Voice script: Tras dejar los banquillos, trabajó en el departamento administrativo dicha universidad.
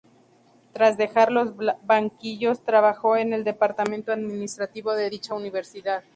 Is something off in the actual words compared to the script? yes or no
yes